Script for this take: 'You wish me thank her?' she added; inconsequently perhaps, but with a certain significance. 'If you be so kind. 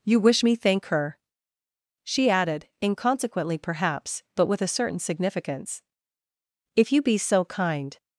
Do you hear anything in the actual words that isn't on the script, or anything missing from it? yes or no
no